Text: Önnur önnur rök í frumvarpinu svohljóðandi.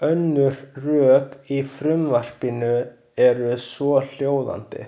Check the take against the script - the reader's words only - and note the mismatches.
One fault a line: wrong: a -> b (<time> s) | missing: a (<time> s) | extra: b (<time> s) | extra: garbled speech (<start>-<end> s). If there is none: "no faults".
missing: önnur (0.6 s)
extra: eru (3.3 s)